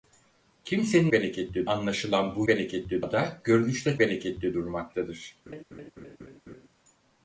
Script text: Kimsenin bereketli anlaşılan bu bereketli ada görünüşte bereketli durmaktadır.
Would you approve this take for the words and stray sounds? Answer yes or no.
no